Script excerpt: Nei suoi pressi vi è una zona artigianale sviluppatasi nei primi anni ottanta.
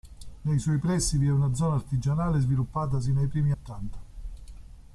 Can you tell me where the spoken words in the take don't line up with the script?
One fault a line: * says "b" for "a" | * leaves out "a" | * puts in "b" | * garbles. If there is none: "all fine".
* leaves out "anni"